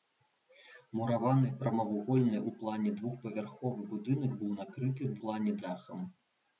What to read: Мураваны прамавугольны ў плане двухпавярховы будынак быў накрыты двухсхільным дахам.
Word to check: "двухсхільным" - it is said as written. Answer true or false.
false